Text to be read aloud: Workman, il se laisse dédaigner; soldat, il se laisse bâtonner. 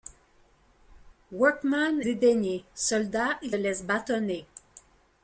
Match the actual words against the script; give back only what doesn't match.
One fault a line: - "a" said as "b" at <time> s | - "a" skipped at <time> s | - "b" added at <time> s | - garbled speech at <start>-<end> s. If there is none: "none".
- "il se laisse" skipped at 2.0 s
- "se" skipped at 3.5 s